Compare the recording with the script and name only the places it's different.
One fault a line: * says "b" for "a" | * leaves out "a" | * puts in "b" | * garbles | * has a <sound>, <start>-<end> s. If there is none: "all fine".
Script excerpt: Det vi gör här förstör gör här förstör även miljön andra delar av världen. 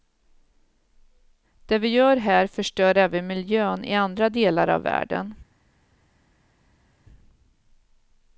* leaves out "gör här förstör"
* puts in "i"